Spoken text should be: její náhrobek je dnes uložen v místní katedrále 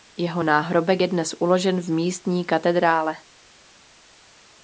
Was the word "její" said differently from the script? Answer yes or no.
yes